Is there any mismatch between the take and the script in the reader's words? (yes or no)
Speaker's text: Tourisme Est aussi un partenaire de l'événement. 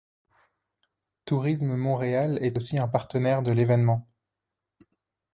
yes